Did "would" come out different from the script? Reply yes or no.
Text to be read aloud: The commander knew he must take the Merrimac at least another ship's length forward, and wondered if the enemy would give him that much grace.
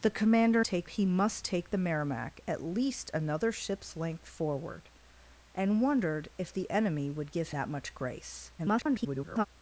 no